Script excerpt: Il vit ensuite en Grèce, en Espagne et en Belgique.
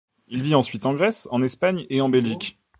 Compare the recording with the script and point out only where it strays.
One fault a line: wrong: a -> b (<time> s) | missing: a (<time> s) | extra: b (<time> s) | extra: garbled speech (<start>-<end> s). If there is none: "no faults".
no faults